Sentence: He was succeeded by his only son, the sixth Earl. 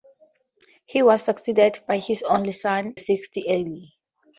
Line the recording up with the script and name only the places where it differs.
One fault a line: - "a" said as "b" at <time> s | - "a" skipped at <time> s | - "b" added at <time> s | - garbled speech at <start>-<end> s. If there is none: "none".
- "the" skipped at 3.0 s